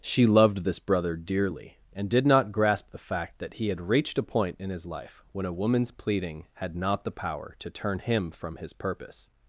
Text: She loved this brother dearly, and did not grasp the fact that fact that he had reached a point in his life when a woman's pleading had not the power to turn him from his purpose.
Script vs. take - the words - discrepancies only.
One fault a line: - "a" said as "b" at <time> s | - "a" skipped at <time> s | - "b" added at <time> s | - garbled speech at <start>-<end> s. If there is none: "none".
- "fact that" skipped at 3.5 s